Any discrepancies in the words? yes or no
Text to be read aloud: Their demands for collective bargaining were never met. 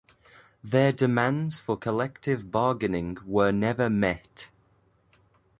no